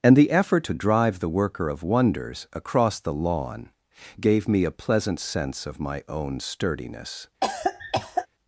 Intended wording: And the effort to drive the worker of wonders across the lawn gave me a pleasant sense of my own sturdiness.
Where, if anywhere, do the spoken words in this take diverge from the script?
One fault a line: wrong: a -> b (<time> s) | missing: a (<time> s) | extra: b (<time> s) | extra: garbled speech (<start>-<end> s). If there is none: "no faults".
no faults